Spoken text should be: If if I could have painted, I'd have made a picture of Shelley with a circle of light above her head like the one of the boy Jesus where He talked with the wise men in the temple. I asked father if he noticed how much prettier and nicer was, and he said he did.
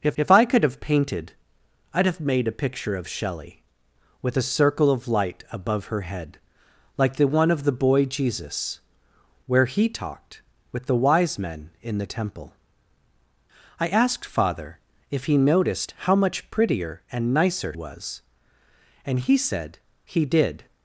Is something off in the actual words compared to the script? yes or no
no